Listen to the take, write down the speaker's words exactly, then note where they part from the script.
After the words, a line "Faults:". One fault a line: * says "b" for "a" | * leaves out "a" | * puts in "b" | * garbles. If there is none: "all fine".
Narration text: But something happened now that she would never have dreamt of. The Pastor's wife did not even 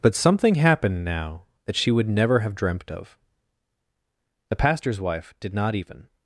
But something happened now that she would never have dreamt of. The Pastor's wife did not even
Faults:
all fine